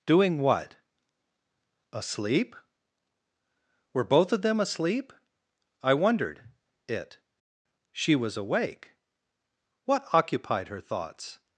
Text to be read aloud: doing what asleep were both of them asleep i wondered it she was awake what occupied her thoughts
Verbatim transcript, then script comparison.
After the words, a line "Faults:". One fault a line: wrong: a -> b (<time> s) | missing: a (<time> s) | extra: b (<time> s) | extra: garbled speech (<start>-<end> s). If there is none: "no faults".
doing what asleep were both of them asleep i wondered it she was awake what occupied her thoughts
Faults:
no faults